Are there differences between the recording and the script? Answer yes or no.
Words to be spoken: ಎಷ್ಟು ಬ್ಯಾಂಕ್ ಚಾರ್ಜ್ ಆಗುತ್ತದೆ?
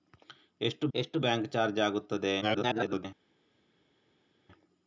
yes